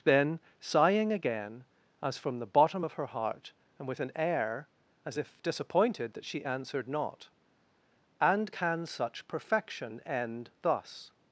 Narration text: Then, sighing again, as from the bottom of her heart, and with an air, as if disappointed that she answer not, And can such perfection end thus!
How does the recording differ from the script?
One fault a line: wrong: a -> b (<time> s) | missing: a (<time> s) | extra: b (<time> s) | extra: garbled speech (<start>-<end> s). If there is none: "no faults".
wrong: answer -> answered (6.4 s)